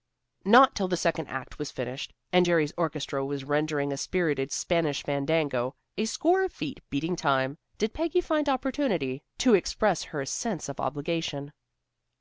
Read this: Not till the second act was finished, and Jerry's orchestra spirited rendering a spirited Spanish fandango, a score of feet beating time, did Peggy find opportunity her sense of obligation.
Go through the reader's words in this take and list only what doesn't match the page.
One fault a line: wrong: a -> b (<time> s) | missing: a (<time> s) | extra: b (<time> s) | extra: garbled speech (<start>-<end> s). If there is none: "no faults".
wrong: spirited -> was (3.2 s)
extra: to express (9.4 s)